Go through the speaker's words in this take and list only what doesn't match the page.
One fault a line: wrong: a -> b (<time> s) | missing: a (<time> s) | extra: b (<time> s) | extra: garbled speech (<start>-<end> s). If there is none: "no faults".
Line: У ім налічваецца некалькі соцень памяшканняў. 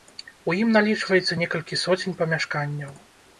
no faults